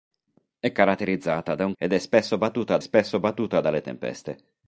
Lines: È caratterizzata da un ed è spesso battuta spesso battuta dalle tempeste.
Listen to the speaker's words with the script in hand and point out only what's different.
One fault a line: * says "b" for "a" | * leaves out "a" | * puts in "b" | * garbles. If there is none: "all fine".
all fine